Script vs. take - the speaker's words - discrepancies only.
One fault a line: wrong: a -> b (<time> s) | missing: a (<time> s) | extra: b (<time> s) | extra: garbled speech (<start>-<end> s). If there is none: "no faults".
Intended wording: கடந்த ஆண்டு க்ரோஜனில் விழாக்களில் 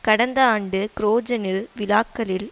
no faults